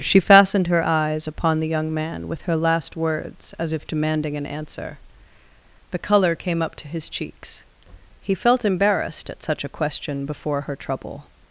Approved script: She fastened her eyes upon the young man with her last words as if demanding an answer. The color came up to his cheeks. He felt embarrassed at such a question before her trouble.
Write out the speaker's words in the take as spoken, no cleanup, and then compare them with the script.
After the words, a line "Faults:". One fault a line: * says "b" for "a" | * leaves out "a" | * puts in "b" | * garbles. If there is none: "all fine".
She fastened her eyes upon the young man with her last words as if demanding an answer. The color came up to his cheeks. He felt embarrassed at such a question before her trouble.
Faults:
all fine